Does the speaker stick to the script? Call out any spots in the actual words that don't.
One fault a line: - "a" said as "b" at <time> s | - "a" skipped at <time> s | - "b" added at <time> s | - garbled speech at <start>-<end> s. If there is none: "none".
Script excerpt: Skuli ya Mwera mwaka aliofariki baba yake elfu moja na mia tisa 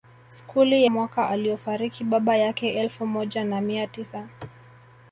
- "ya Mwera" skipped at 0.8 s